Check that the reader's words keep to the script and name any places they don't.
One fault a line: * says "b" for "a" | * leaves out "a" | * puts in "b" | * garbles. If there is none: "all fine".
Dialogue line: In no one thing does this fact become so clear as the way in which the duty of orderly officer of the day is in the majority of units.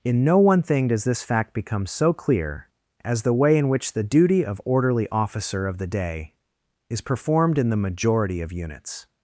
* puts in "performed"